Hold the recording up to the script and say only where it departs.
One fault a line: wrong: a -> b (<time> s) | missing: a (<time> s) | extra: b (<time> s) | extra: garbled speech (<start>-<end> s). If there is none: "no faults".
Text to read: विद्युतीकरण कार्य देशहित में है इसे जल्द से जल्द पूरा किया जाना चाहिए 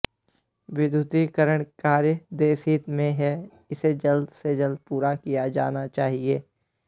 no faults